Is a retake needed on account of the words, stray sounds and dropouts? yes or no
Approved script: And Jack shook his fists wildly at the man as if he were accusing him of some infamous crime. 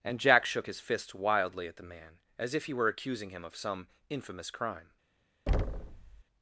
yes